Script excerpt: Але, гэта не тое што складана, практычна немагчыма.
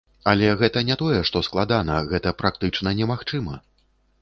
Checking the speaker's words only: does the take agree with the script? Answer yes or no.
no